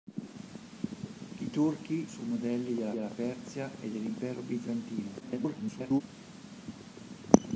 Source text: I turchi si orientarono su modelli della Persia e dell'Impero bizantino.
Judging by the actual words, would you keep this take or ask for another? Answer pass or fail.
fail